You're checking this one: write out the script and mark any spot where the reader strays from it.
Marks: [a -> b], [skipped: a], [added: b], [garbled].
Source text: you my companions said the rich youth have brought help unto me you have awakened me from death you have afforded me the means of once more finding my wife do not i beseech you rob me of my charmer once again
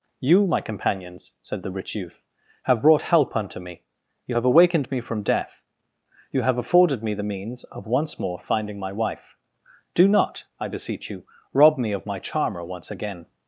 you my companions said the rich youth have brought help unto me you have awakened me from death you have afforded me the means of once more finding my wife do not i beseech you rob me of my charmer once again